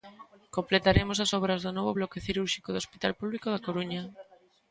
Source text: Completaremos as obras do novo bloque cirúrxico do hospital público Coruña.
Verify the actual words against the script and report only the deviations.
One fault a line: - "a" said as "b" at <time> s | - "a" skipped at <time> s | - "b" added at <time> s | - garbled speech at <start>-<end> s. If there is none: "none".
- "da" added at 3.5 s